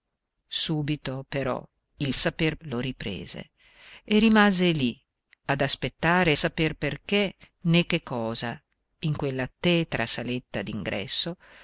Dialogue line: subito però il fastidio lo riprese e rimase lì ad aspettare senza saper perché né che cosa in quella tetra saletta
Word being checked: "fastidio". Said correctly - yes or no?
no